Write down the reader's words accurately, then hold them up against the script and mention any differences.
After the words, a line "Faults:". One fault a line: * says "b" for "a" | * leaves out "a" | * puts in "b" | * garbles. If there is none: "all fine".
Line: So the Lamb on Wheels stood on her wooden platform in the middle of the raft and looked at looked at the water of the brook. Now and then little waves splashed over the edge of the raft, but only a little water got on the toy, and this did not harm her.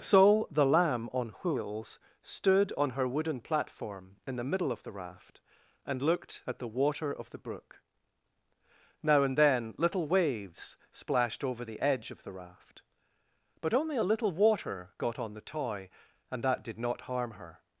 So the Lamb on Wheels stood on her wooden platform in the middle of the raft and looked at the water of the brook. Now and then little waves splashed over the edge of the raft, but only a little water got on the toy, and that did not harm her.
Faults:
* leaves out "looked at"
* says "that" for "this"